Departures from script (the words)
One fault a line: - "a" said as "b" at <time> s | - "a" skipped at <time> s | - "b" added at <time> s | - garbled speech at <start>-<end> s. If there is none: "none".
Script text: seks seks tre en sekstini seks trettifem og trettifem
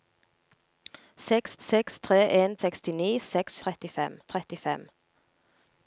none